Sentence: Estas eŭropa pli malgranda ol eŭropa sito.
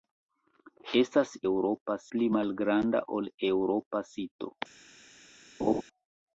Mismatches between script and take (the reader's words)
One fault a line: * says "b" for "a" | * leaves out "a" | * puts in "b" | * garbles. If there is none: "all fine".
all fine